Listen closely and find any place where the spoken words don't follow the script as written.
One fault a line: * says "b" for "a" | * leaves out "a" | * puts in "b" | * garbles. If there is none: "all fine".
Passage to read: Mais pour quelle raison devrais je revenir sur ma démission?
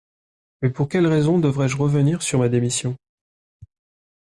all fine